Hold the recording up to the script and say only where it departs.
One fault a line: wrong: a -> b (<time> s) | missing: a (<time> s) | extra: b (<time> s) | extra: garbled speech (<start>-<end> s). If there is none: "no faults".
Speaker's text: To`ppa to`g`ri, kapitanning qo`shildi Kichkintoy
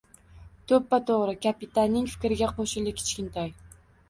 extra: fikriga (2.1 s)